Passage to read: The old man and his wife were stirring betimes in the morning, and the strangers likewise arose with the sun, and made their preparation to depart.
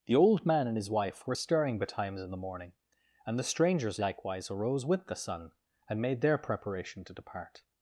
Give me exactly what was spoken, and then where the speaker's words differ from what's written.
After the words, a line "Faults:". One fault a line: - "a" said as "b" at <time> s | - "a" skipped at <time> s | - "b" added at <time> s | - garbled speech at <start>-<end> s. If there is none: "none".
The old man and his wife were stirring betimes in the morning, and the strangers likewise arose with the sun, and made their preparation to depart.
Faults:
none